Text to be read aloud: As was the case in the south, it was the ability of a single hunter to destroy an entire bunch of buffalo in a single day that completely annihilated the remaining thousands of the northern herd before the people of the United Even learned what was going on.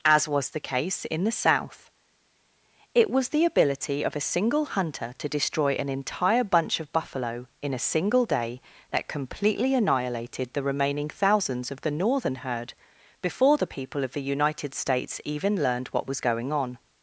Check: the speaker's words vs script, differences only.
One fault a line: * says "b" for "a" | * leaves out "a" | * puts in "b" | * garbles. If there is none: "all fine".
* puts in "States"